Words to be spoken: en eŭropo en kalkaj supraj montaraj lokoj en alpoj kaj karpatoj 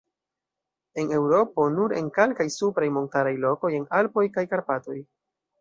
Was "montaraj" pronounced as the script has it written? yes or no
yes